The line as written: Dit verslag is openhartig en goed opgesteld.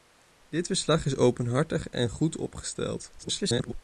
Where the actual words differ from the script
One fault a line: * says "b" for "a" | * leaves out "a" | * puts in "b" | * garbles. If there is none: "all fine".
* garbles